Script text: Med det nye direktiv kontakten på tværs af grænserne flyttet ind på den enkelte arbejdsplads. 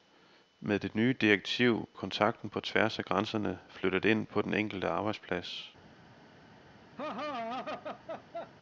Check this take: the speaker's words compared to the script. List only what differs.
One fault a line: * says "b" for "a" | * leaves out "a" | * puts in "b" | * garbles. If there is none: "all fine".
all fine